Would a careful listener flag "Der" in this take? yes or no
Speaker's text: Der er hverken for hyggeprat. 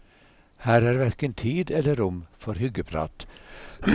yes